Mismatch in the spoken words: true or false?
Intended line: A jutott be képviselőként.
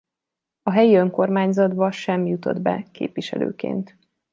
true